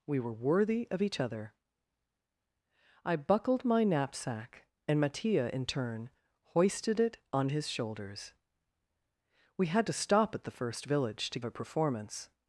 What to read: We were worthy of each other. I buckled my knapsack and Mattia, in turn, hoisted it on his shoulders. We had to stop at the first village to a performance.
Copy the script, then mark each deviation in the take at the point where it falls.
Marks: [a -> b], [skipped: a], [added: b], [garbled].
We were worthy of each other. I buckled my knapsack and Mattia, in turn, hoisted it on his shoulders. We had to stop at the first village to a performance.